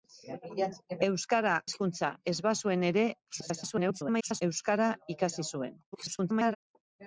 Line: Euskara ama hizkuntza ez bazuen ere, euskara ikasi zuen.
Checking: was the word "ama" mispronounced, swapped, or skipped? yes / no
yes